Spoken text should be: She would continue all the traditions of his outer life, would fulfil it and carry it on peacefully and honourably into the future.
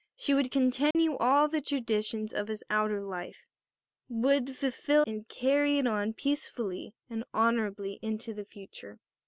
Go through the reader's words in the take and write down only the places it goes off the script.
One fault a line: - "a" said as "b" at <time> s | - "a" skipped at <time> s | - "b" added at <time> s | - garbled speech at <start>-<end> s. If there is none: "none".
- "it" skipped at 5.0 s